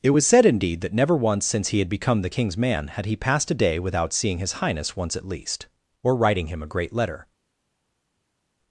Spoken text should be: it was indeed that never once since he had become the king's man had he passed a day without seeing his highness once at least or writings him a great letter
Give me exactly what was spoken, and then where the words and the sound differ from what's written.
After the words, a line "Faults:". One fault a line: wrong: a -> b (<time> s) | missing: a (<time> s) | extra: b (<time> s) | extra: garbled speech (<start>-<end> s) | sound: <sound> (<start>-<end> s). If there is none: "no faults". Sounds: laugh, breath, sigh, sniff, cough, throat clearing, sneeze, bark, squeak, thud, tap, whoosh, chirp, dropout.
it was said indeed that never once since he had become the king's man had he passed a day without seeing his highness once at least or writing him a great letter
Faults:
extra: said (0.3 s)
wrong: writings -> writing (6.1 s)